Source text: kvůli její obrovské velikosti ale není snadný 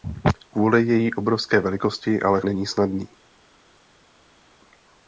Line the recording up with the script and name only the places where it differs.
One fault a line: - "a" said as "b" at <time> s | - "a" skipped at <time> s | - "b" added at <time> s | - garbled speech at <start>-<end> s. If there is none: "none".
none